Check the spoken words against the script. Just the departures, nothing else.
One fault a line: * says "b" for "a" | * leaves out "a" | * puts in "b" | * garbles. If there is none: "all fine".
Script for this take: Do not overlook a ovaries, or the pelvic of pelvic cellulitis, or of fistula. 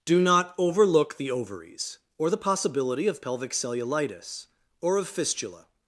* says "the" for "a"
* says "possibility" for "pelvic"